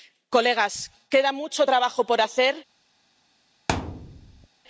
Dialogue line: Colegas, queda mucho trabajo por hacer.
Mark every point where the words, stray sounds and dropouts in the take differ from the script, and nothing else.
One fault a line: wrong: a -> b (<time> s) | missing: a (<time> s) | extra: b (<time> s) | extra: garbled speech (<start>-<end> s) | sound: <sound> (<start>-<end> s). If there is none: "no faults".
sound: thud (3.7-4.5 s)